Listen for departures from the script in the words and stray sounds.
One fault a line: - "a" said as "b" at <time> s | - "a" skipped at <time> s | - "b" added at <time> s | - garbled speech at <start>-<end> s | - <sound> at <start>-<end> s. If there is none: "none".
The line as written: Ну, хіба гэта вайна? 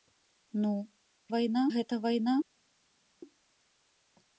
- "хіба" said as "вайна" at 1.3 s